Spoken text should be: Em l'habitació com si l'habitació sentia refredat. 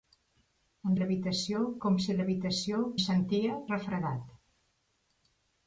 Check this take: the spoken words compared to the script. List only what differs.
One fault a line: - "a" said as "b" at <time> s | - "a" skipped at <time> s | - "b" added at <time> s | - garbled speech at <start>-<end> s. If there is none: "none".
none